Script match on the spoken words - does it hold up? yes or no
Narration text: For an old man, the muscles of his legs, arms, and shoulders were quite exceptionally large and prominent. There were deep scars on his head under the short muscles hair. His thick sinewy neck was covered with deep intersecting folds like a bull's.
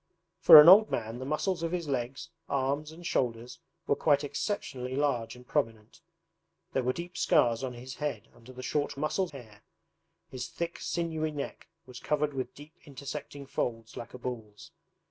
yes